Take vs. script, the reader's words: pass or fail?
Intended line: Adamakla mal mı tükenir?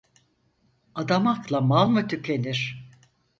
pass